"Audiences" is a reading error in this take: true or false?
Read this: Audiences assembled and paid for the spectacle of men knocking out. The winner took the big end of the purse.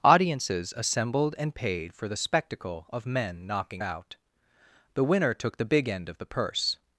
false